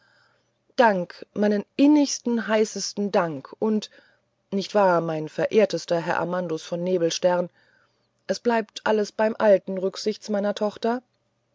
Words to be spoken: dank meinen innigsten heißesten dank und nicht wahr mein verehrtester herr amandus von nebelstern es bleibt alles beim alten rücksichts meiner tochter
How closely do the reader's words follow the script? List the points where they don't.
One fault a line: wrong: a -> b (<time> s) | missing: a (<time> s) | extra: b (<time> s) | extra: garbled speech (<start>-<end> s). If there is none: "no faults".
no faults